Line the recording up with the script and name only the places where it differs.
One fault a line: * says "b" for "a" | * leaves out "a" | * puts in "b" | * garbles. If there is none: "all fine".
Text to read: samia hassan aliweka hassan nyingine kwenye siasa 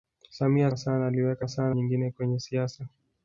all fine